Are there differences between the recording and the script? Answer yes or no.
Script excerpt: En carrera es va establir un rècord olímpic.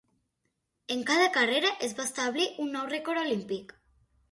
yes